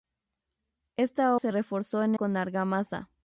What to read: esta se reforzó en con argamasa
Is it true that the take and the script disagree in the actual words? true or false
false